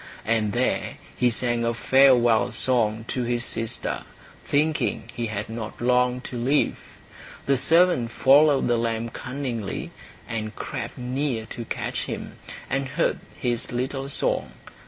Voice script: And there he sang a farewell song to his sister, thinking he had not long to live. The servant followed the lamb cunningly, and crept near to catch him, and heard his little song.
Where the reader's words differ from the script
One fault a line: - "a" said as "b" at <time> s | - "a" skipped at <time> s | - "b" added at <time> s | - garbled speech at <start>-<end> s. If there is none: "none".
none